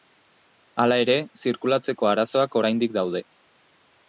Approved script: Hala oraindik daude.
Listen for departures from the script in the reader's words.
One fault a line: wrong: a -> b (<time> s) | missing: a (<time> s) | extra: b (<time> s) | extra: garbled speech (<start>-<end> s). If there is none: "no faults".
extra: ere zirkulatzeko arazoak (1.0 s)